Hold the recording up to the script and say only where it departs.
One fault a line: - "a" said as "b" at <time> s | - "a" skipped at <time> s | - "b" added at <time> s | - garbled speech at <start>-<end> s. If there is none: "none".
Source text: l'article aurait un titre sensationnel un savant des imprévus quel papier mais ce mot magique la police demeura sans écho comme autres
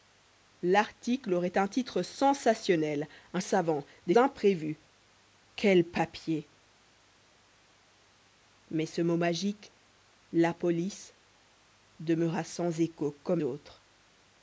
none